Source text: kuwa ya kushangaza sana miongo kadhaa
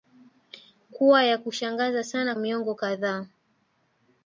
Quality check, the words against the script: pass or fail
pass